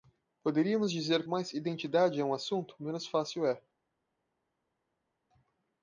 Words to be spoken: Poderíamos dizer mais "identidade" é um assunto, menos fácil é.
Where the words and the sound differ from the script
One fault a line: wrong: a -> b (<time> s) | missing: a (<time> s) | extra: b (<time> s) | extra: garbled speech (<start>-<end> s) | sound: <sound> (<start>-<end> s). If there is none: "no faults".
no faults